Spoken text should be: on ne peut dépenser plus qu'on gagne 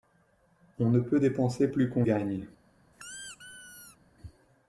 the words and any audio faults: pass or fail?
fail